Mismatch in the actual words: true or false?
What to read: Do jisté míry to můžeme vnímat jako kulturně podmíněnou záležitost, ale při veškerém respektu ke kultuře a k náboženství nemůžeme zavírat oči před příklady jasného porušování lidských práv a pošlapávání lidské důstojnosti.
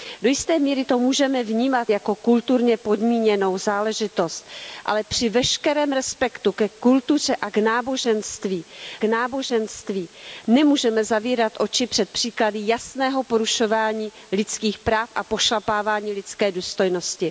true